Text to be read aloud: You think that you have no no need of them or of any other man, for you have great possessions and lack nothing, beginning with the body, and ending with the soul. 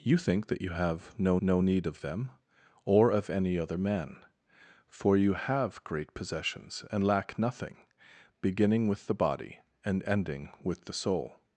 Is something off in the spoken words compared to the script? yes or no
no